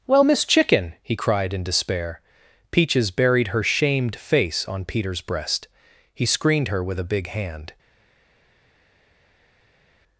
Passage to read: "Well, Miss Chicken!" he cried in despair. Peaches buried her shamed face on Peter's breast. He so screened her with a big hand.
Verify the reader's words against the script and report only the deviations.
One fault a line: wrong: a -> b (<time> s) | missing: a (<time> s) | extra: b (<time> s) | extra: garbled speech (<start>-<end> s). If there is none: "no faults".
missing: so (6.3 s)